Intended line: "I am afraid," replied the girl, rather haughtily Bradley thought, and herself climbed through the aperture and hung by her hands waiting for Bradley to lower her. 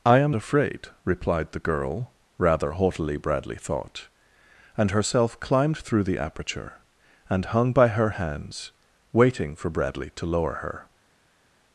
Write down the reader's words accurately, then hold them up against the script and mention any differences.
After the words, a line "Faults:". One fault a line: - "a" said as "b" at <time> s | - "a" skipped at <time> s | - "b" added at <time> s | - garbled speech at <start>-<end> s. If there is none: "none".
"I am afraid," replied the girl, rather haughtily Bradley thought, and herself climbed through the aperture and hung by her hands waiting for Bradley to lower her.
Faults:
none